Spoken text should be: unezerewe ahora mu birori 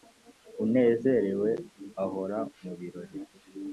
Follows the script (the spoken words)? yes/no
yes